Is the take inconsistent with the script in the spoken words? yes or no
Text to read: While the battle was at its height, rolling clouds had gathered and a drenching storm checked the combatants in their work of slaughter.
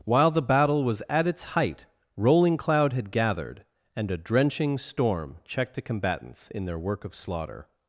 yes